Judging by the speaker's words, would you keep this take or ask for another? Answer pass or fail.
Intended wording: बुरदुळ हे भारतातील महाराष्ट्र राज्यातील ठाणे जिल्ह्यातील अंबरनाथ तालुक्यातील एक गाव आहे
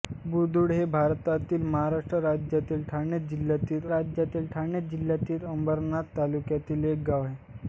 fail